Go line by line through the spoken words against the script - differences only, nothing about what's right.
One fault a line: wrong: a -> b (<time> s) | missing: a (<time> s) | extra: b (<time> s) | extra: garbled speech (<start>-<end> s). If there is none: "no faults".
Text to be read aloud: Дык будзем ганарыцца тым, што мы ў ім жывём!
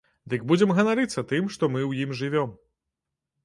no faults